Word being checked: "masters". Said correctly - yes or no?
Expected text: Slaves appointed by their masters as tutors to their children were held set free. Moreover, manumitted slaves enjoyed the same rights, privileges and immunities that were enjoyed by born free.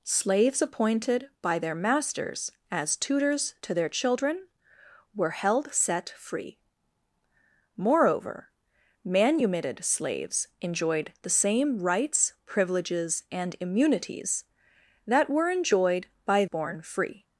yes